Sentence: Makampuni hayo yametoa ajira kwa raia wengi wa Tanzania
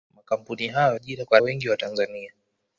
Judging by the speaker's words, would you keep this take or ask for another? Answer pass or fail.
fail